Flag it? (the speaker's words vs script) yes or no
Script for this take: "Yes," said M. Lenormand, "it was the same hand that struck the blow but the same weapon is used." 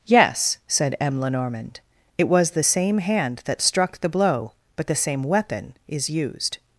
no